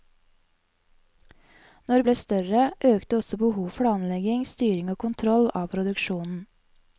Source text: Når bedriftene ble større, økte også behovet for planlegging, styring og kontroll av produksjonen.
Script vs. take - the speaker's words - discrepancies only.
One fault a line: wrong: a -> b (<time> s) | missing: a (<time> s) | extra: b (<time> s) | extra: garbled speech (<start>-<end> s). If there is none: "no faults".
missing: bedriftene (2.0 s)
missing: for (3.8 s)